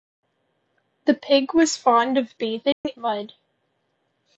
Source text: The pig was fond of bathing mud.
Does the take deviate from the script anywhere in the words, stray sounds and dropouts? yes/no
yes